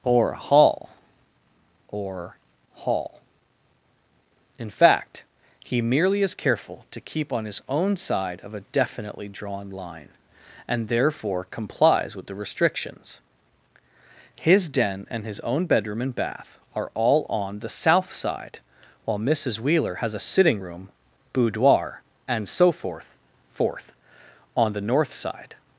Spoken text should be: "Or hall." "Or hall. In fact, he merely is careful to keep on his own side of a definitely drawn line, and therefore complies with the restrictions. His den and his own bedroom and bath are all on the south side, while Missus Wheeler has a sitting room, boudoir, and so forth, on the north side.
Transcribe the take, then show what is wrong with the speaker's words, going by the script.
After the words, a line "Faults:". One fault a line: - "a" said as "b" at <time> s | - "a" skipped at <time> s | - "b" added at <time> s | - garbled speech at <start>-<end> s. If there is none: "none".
"Or hall." "Or hall. In fact, he merely is careful to keep on his own side of a definitely drawn line, and therefore complies with the restrictions. His den and his own bedroom and bath are all on the south side, while Missus Wheeler has a sitting room, boudoir, and so forth forth, on the north side.
Faults:
- "forth" added at 23.5 s